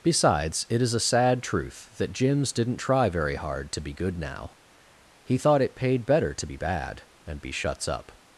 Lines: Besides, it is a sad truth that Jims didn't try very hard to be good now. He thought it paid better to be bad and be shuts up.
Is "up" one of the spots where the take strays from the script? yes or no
no